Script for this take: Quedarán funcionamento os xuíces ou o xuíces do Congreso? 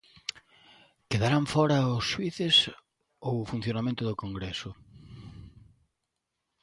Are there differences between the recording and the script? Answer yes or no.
yes